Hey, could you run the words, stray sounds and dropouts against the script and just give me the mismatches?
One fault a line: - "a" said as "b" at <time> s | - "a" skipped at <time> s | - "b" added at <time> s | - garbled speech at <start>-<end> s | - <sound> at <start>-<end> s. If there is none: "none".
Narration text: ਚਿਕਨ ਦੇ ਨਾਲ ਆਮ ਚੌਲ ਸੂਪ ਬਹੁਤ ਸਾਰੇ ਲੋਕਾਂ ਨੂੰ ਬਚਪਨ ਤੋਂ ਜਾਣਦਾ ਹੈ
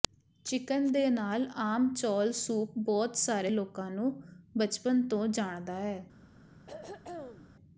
- throat clearing at 6.7-7.5 s